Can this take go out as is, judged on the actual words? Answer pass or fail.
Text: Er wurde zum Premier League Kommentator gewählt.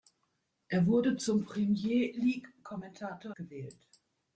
pass